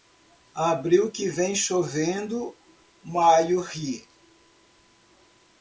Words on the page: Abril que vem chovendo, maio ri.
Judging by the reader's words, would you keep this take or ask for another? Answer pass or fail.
pass